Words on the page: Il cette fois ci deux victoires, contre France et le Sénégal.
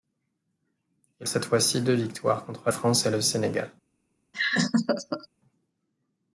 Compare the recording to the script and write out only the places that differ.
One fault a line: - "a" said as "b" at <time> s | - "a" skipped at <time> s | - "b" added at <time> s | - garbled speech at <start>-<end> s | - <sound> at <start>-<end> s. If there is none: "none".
- laugh at 4.3-5.3 s